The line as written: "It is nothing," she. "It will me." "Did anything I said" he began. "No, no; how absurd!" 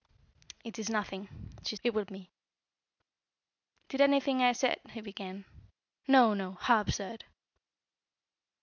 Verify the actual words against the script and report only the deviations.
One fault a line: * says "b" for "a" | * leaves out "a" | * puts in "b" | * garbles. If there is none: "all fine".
all fine